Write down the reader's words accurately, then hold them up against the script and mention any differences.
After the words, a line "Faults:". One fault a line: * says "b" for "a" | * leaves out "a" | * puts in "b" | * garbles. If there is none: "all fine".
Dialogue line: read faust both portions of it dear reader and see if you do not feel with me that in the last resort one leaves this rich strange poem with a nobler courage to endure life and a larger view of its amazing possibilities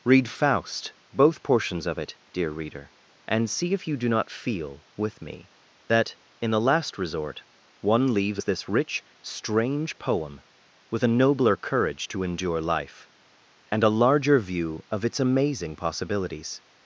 read faust both portions of it dear reader and see if you do not feel with me that in the last resort one leaves this rich strange poem with a nobler courage to endure life and a larger view of its amazing possibilities
Faults:
all fine